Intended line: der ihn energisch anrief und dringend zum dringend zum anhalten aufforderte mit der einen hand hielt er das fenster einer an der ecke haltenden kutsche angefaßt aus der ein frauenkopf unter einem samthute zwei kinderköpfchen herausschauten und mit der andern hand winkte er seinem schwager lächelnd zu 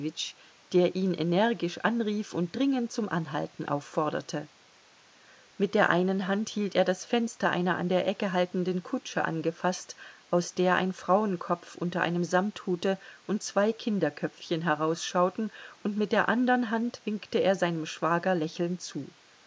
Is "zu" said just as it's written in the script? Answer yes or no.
yes